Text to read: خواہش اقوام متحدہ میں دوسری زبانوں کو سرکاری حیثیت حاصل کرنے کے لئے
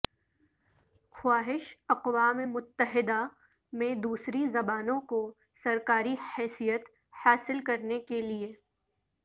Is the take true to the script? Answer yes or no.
yes